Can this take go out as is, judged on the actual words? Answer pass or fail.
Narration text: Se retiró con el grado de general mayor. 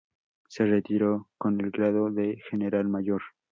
pass